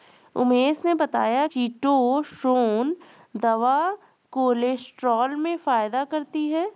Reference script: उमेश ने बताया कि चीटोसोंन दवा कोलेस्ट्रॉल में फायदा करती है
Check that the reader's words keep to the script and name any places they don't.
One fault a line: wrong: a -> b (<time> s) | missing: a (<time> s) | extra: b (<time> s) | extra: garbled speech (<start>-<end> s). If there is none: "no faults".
missing: कि (1.4 s)